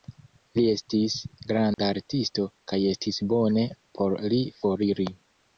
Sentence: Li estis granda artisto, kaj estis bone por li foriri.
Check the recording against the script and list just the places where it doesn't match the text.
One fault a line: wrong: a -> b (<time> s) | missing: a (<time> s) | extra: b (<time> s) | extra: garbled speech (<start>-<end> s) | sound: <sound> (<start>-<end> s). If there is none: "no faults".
sound: dropout (1.7-1.8 s)